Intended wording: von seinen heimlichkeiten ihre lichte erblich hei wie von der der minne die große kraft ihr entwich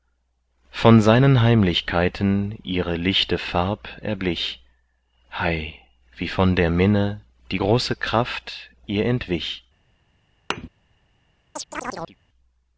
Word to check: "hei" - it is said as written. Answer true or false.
true